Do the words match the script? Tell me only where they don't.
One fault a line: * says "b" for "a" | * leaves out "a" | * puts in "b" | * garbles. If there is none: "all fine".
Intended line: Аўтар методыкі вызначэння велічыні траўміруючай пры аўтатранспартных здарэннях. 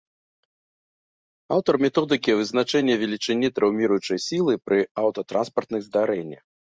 * puts in "сілы"